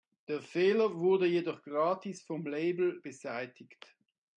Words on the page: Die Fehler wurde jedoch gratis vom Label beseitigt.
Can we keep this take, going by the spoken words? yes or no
no